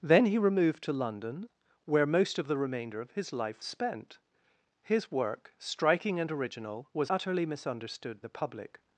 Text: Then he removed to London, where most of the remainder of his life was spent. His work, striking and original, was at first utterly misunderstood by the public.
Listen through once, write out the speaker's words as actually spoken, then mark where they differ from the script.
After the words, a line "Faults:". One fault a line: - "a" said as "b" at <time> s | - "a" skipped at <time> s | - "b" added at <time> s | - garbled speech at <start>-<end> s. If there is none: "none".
Then he removed to London, where most of the remainder of his life spent. His work, striking and original, was utterly misunderstood the public.
Faults:
- "was" skipped at 3.6 s
- "at first" skipped at 7.1 s
- "by" skipped at 8.2 s